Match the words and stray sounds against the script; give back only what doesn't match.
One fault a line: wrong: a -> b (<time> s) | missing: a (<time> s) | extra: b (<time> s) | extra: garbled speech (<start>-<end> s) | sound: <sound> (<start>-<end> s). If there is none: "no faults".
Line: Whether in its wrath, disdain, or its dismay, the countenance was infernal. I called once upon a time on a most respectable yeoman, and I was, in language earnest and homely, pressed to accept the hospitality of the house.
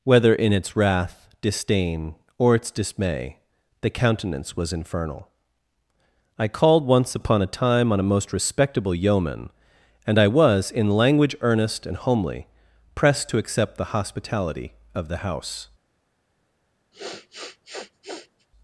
sound: sniff (16.9-18.5 s)